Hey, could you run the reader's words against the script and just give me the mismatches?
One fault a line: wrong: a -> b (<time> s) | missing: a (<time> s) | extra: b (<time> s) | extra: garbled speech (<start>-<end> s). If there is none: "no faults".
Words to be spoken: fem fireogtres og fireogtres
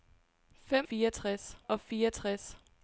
no faults